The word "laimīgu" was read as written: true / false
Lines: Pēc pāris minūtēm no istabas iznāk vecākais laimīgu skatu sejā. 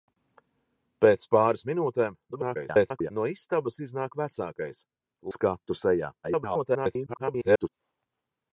false